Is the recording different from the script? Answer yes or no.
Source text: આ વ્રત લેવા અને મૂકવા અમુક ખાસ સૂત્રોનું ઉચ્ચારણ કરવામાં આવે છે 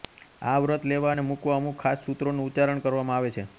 no